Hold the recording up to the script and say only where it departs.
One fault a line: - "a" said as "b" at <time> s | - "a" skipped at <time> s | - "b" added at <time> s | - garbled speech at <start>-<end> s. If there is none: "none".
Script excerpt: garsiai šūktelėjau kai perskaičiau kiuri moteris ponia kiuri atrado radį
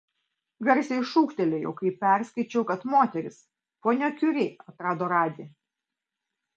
- "kiuri" said as "kad" at 2.7 s